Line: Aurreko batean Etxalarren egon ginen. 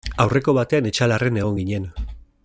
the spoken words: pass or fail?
pass